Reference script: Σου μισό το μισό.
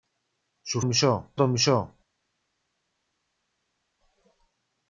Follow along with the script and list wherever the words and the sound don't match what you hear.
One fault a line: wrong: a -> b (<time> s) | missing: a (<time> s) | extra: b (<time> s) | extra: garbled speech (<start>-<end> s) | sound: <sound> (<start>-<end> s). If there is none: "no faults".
no faults